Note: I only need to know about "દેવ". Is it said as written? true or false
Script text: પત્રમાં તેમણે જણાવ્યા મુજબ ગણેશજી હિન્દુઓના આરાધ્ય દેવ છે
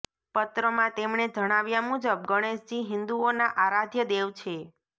true